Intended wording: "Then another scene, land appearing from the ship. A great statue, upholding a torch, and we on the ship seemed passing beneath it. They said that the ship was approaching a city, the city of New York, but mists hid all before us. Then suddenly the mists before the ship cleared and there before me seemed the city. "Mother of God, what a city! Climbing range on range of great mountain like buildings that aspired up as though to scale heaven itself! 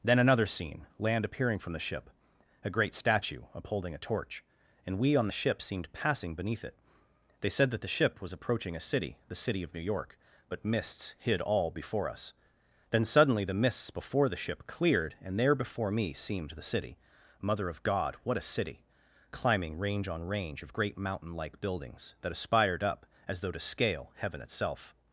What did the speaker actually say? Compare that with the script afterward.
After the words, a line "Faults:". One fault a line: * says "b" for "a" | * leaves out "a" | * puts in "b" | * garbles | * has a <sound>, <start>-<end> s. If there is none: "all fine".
"Then another scene, land appearing from the ship. A great statue, upholding a torch, and we on the ship seemed passing beneath it. They said that the ship was approaching a city, the city of New York, but mists hid all before us. Then suddenly the mists before the ship cleared and there before me seemed the city. "Mother of God, what a city! Climbing range on range of great mountain like buildings that aspired up as though to scale heaven itself!
Faults:
all fine